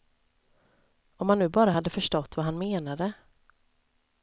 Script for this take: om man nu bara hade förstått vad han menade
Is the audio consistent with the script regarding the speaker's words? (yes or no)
yes